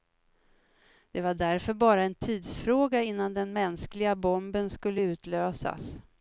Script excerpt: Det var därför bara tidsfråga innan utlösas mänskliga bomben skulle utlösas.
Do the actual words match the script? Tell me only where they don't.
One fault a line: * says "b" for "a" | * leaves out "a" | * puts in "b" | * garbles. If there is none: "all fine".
* puts in "en"
* says "den" for "utlösas"